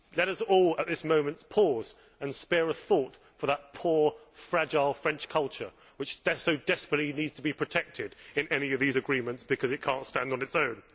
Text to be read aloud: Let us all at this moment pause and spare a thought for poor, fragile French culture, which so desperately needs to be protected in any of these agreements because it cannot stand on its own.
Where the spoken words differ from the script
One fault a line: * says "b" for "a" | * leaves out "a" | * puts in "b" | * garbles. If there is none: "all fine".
* puts in "that"